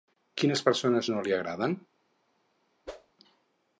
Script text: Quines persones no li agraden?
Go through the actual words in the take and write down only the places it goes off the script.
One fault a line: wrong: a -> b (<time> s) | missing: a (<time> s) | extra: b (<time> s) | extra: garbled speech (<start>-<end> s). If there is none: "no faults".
no faults